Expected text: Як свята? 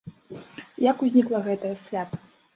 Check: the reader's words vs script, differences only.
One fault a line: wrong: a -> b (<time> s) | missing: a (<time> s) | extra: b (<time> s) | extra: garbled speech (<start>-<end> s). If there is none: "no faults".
extra: узнікла гэтае (1.1 s)